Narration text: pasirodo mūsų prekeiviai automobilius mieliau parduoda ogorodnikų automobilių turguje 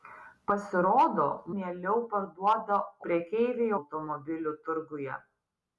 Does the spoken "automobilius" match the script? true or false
false